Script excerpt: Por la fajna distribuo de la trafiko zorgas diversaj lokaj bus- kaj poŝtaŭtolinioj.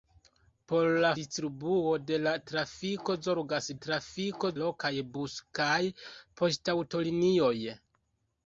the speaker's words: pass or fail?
fail